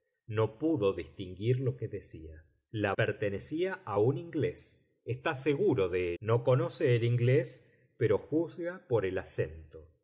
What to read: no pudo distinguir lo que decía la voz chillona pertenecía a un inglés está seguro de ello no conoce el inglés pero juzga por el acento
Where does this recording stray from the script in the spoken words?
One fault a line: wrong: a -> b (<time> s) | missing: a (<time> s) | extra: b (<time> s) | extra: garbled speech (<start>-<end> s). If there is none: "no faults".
missing: voz chillona (2.9 s)
missing: ello (6.1 s)